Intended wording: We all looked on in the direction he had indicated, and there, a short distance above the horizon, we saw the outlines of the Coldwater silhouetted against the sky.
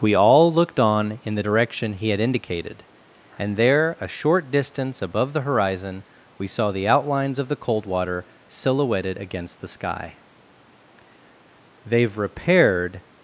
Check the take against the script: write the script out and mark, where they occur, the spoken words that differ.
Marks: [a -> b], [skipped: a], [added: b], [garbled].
We all looked on in the direction he had indicated, and there, a short distance above the horizon, we saw the outlines of the Coldwater silhouetted against the sky. [added: They've repaired]